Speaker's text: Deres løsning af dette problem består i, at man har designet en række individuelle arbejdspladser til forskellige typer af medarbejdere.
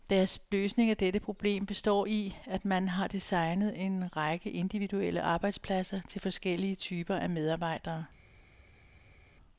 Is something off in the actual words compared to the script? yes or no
no